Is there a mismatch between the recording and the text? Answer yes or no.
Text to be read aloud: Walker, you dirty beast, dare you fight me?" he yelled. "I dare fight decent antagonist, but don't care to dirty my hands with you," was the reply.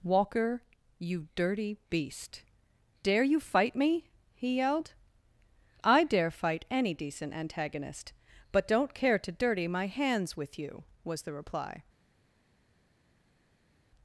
yes